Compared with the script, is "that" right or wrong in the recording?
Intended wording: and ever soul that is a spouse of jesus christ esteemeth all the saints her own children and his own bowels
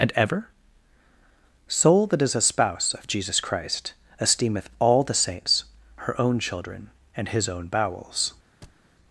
right